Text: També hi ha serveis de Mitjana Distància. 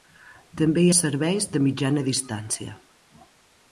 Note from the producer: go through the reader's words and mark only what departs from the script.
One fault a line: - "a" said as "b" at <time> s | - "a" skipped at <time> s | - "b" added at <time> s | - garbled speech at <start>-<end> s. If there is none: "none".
none